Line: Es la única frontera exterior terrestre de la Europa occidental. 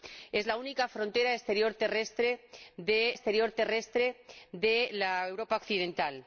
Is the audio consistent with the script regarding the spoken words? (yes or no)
no